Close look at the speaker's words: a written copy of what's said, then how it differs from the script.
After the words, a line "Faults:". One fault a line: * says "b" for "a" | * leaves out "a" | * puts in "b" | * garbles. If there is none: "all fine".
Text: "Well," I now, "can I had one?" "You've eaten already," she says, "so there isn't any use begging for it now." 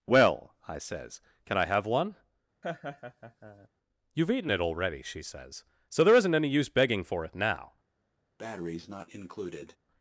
"Well," I says, "can I have one?" "You've eaten it already," she says, "so there isn't any use begging for it now."
Faults:
* says "says" for "now"
* says "have" for "had"
* puts in "it"